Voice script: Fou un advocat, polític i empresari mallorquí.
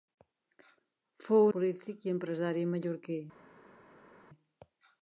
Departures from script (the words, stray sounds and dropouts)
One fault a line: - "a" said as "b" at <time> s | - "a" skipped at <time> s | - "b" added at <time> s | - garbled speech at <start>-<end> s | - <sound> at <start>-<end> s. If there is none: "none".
- "un advocat" skipped at 1.4 s